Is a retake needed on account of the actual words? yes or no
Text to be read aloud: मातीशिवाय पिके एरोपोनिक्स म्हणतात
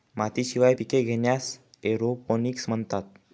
yes